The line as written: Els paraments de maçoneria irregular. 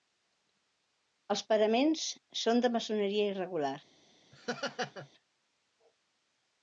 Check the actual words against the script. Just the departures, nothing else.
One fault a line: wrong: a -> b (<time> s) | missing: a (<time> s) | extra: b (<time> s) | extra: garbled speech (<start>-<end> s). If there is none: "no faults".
extra: són (2.5 s)